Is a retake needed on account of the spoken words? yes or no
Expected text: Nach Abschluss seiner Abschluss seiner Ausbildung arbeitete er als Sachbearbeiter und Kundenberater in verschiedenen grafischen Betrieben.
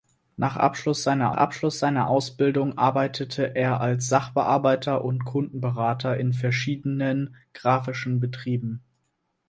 no